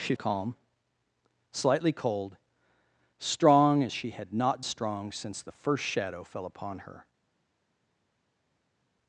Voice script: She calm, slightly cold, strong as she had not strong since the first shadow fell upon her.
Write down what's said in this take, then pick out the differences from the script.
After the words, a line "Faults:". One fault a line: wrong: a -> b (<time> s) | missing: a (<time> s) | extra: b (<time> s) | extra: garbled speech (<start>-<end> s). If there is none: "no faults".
She calm, slightly cold, strong as she had not strong since the first shadow fell upon her.
Faults:
no faults